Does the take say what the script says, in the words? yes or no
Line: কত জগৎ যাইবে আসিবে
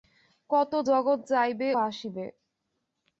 yes